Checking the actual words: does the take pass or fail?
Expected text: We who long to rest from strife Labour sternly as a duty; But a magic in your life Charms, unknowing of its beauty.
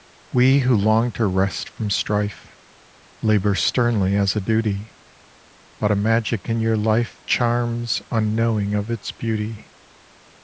pass